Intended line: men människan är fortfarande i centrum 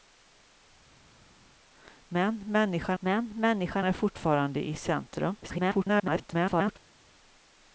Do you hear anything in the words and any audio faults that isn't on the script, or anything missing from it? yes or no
yes